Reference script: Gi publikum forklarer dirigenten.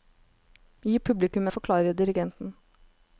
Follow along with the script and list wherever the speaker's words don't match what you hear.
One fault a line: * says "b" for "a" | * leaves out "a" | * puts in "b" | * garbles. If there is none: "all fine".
all fine